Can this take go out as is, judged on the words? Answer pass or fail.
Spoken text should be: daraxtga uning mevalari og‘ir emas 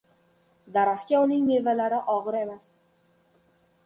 pass